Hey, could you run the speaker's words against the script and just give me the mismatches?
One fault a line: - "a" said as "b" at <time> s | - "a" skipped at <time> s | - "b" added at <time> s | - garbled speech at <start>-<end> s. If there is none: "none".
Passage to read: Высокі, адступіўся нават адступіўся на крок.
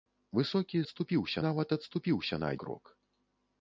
none